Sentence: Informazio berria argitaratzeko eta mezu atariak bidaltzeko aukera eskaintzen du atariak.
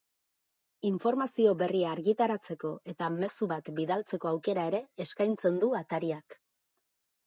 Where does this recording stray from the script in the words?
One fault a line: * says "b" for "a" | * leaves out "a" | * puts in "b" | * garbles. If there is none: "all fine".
* says "bat" for "atariak"
* puts in "ere"